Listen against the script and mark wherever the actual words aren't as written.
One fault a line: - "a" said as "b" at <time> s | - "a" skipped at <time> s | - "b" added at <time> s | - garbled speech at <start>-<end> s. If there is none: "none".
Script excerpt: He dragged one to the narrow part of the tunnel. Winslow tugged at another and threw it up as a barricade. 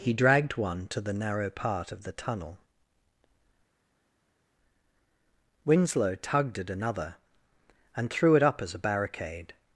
none